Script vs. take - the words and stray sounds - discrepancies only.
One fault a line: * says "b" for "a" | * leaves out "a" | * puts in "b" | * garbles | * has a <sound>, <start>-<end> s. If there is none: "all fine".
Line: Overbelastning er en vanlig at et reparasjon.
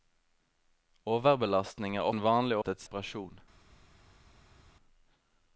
all fine